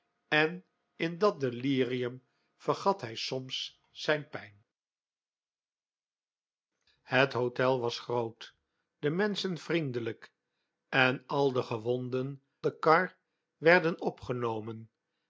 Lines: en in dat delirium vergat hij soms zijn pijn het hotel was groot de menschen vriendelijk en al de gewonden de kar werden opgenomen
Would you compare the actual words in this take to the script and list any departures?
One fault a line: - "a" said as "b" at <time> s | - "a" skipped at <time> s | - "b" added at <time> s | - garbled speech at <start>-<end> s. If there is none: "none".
none